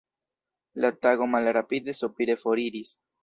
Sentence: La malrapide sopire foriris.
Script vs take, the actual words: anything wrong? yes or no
yes